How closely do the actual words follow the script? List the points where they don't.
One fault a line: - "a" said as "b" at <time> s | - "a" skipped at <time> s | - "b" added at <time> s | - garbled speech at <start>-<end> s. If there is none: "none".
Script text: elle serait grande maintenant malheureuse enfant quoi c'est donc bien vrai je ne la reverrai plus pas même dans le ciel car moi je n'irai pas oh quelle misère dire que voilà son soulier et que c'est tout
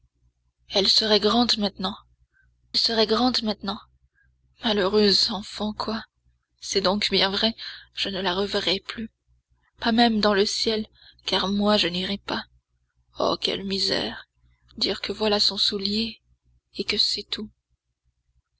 - "serait grande maintenant" added at 2.8 s